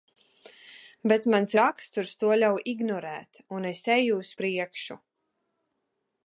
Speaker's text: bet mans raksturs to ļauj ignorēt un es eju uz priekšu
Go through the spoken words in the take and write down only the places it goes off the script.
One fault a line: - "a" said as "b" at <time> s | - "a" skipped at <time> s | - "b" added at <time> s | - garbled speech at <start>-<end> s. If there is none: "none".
none